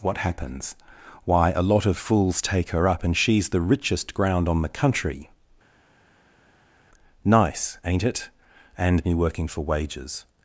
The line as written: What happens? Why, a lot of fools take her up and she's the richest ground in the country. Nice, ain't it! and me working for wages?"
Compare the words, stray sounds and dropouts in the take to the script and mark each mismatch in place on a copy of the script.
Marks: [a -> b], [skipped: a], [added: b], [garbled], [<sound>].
What happens? Why, a lot of fools take her up and she's the richest ground [in -> on] the country. Nice, ain't it! and me working for wages?"